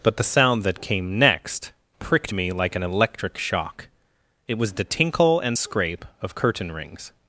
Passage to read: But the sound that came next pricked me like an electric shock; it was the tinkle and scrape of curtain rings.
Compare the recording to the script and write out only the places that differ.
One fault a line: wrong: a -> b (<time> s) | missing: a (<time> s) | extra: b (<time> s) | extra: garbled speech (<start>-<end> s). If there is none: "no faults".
no faults